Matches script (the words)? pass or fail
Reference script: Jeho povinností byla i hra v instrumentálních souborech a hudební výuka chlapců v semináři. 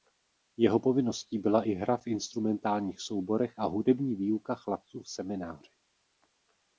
pass